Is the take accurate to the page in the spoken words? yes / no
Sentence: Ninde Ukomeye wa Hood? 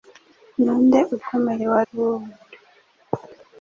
yes